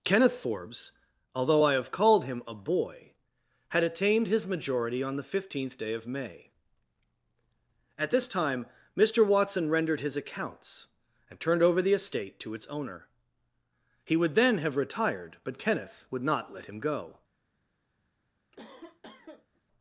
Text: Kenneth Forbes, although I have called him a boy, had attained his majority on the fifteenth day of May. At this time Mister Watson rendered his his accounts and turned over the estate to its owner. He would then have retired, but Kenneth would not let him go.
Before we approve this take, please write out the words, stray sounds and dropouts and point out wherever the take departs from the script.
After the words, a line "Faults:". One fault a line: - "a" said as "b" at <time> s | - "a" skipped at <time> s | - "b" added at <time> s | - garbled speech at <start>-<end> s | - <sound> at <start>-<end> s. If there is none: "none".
Kenneth Forbes, although I have called him a boy, had attained his majority on the fifteenth day of May. At this time Mister Watson rendered his accounts and turned over the estate to its owner. He would then have retired, but Kenneth would not let him go.
Faults:
- "his" skipped at 10.2 s
- cough at 18.5-19.6 s